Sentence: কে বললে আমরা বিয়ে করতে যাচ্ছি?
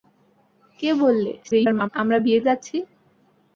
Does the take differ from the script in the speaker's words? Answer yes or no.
yes